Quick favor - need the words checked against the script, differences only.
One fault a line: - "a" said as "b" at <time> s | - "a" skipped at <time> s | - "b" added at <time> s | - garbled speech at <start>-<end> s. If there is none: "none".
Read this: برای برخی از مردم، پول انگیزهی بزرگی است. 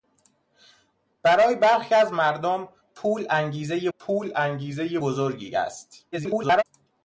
- "پول انگیزهی" added at 4.0 s
- garbled speech at 6.1-6.6 s